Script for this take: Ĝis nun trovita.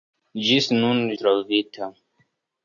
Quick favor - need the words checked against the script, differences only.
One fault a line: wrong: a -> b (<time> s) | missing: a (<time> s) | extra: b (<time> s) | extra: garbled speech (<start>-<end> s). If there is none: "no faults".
no faults